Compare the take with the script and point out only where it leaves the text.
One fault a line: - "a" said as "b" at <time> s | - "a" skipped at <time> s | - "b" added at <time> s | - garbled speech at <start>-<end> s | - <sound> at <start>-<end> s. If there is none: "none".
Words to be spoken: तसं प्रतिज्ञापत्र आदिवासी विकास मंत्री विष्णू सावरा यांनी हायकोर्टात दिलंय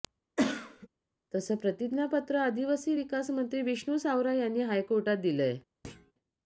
- cough at 0.4-0.9 s
- thud at 5.8-6.1 s